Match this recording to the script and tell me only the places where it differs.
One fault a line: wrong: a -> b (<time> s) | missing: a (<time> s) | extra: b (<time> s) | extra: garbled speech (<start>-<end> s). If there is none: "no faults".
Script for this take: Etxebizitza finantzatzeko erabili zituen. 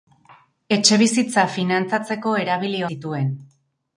no faults